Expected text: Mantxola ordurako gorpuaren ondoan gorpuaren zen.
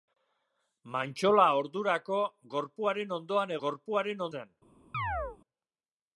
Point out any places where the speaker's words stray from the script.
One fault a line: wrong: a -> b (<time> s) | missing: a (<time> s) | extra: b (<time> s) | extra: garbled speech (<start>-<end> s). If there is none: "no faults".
no faults